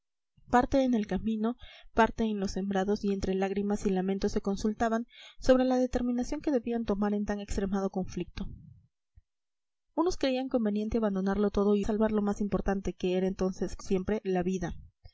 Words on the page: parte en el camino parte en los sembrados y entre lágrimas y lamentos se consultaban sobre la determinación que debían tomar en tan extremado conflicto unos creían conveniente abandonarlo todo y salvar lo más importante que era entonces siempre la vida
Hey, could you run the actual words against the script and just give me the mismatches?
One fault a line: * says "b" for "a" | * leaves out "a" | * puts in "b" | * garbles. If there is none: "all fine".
all fine